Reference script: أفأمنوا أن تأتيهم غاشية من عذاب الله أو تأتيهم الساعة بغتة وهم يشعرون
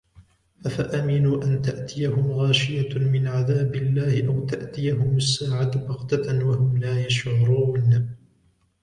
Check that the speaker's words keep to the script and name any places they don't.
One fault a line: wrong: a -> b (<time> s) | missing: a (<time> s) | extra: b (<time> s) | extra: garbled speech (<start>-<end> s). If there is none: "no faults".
extra: لا (6.8 s)